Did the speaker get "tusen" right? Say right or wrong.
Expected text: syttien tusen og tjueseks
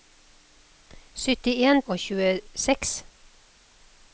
wrong